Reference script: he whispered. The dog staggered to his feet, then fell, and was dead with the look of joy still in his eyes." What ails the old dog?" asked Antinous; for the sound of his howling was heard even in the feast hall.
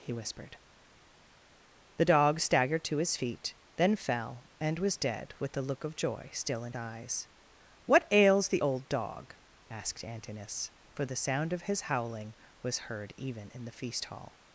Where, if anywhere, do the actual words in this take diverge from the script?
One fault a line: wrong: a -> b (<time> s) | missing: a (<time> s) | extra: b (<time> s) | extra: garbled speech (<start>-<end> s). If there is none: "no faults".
missing: his (6.7 s)